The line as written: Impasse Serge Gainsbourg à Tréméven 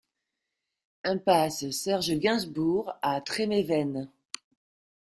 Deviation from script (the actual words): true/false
false